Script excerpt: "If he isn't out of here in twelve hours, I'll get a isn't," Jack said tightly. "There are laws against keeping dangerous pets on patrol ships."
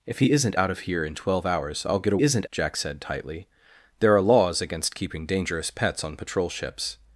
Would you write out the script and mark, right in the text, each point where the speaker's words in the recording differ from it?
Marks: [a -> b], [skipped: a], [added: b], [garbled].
"If he isn't out of here in twelve hours, I'll get a isn't," Jack said tightly. "There are laws against keeping dangerous pets on patrol ships."